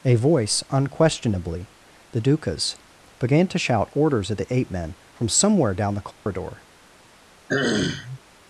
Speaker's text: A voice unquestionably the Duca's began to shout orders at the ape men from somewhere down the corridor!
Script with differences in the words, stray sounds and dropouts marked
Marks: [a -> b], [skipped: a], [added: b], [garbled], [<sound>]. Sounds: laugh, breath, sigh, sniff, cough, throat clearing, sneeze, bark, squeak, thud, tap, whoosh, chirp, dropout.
A voice unquestionably the Duca's began to shout orders at the ape men from somewhere down the corridor! [dropout] [throat clearing]